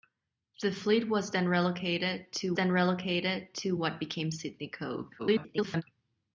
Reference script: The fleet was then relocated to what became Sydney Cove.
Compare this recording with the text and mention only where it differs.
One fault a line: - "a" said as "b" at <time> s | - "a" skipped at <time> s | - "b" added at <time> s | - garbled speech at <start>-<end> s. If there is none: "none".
- "then relocated to" added at 2.5 s
- garbled speech at 5.2-5.8 s